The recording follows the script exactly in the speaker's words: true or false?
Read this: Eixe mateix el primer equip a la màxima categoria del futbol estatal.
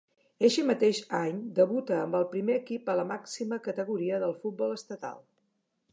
false